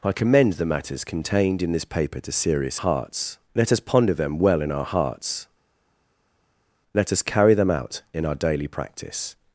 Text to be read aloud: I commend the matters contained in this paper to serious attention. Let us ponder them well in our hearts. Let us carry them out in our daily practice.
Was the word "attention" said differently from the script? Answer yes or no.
yes